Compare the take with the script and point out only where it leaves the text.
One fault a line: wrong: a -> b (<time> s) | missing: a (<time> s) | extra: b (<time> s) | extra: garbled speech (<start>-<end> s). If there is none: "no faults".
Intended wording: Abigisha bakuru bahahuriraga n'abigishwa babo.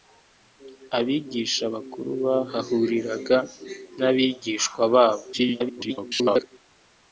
extra: garbled speech (5.3-6.4 s)